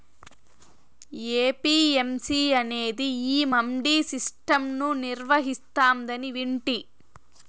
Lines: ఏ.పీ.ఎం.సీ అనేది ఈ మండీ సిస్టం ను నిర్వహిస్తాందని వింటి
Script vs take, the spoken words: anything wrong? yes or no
no